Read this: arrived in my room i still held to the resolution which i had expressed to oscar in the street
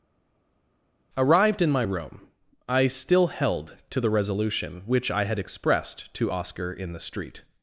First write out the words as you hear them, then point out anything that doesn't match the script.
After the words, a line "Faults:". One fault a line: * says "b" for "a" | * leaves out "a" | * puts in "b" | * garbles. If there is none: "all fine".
arrived in my room i still held to the resolution which i had expressed to oscar in the street
Faults:
all fine